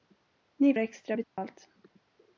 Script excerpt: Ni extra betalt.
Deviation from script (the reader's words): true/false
false